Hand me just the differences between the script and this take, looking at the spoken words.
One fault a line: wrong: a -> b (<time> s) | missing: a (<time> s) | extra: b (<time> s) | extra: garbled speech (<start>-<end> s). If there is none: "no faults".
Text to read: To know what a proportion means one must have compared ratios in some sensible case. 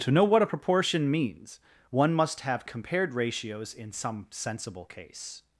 no faults